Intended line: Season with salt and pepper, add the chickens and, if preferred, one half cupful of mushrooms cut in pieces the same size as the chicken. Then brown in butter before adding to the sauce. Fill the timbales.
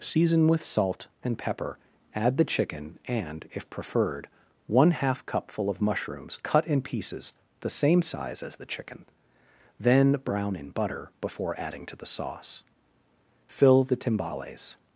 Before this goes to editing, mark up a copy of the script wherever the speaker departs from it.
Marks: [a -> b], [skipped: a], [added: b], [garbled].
Season with salt and pepper, add the [chickens -> chicken] and, if preferred, one half cupful of mushrooms cut in pieces the same size as the chicken. Then brown in butter before adding to the sauce. Fill the timbales.